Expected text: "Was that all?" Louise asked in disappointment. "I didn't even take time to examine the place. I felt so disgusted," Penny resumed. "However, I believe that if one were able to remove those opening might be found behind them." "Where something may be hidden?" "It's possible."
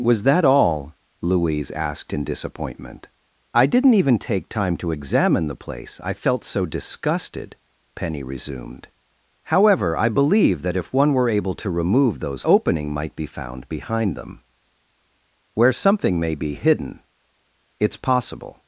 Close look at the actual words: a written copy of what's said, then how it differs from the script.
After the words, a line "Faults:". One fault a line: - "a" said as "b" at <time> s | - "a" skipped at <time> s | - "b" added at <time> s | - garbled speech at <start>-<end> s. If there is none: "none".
"Was that all?" Louise asked in disappointment. "I didn't even take time to examine the place. I felt so disgusted," Penny resumed. "However, I believe that if one were able to remove those opening might be found behind them." "Where something may be hidden?" "It's possible."
Faults:
none